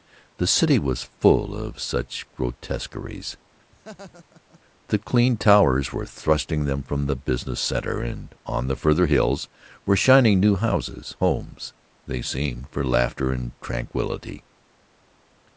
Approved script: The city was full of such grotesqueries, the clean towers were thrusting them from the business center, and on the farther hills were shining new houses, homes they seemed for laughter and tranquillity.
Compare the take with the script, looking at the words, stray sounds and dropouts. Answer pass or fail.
fail